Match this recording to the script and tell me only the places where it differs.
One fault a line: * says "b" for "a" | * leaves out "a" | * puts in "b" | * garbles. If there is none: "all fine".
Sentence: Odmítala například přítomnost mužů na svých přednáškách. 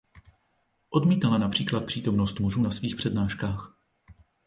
all fine